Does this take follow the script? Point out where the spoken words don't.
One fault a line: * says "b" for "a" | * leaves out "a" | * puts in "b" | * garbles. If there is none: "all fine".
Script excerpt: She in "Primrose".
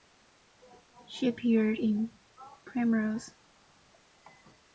* puts in "appeared"